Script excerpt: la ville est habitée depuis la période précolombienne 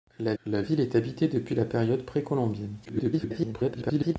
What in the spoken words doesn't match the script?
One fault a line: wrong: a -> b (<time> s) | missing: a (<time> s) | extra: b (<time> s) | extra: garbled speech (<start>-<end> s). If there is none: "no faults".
extra: la (0.4 s)
extra: garbled speech (2.8-4.2 s)